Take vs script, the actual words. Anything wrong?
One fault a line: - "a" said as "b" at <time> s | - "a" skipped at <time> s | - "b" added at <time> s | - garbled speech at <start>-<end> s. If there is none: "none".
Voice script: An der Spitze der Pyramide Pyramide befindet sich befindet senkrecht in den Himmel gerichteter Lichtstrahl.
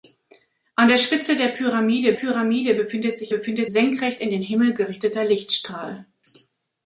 none